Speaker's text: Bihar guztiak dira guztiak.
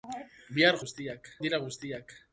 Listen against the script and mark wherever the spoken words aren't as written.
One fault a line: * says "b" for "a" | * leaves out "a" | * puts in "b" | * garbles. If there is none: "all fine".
all fine